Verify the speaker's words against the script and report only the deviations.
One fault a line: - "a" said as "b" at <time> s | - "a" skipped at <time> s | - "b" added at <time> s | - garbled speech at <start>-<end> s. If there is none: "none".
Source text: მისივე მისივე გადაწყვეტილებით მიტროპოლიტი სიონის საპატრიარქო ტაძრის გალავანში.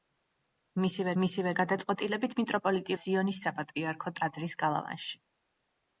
none